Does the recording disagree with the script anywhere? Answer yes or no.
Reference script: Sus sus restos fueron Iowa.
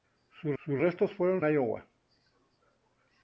no